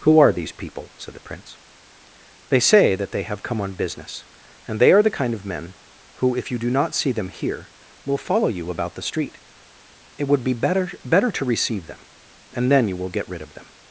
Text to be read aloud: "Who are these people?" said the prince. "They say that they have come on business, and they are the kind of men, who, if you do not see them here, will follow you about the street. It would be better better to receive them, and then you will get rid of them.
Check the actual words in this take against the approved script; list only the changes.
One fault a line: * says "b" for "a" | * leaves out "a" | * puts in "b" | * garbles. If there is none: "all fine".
all fine